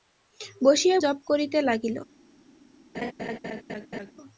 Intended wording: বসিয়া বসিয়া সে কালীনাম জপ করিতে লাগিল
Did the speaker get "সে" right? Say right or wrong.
wrong